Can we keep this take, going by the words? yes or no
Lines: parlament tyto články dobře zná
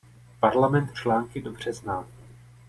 no